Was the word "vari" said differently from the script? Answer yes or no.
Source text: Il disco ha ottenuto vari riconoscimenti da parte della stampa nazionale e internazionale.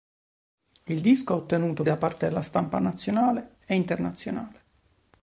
yes